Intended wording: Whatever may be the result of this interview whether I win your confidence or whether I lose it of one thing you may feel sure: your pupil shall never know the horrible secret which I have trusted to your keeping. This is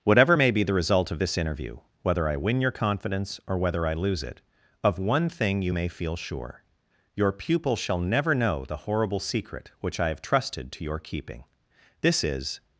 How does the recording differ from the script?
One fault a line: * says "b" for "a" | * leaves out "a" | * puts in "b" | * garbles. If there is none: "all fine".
all fine